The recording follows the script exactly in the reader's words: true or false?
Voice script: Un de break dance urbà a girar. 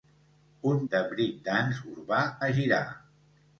true